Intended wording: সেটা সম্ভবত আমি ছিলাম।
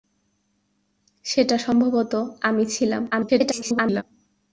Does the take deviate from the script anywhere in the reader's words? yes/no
yes